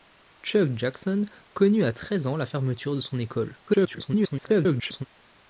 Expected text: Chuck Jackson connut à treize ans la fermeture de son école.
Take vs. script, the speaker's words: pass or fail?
fail